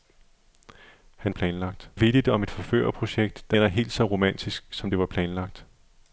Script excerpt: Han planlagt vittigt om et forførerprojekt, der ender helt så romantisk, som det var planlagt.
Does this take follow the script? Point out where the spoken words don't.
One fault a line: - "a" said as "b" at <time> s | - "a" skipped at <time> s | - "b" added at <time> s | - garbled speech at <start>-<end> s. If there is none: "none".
none